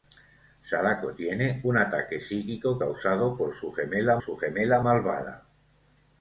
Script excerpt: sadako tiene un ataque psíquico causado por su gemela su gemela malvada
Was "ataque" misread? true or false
false